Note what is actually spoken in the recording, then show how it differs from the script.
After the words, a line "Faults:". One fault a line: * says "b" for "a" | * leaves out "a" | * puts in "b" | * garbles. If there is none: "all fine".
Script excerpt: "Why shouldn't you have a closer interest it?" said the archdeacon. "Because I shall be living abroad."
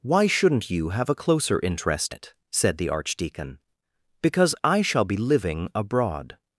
"Why shouldn't you have a closer interest it?" said the archdeacon. "Because I shall be living abroad."
Faults:
all fine